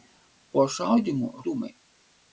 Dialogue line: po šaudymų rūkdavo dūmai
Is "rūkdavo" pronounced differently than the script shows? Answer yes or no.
yes